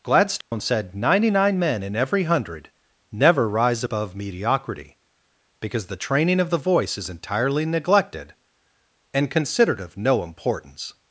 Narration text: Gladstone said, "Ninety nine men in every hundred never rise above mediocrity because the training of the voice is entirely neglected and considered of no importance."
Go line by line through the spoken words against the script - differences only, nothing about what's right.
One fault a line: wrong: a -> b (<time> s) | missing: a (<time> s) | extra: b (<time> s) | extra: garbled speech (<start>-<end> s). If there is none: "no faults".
no faults